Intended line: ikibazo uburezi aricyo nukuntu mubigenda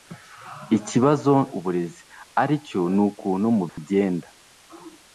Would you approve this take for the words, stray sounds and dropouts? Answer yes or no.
no